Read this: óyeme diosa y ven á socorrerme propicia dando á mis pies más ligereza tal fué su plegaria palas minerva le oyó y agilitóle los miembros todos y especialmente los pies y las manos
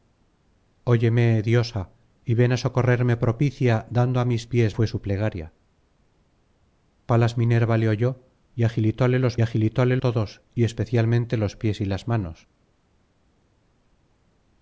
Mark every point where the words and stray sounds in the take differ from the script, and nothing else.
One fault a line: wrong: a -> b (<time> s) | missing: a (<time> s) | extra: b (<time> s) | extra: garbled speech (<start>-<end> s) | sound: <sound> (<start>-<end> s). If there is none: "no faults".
missing: más ligereza tal (4.7 s)
wrong: miembros -> agilitóle (9.4 s)